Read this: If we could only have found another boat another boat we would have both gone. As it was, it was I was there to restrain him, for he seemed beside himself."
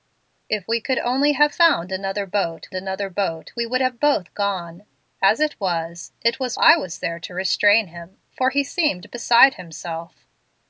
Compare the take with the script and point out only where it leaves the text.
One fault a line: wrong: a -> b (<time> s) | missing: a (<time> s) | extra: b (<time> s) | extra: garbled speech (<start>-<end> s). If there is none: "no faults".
no faults